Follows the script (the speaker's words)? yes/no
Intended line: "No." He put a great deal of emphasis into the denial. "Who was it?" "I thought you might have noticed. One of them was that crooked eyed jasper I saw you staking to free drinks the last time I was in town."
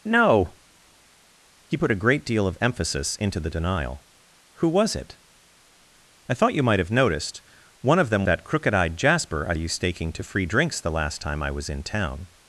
no